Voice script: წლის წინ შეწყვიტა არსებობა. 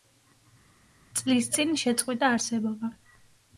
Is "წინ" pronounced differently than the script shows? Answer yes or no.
no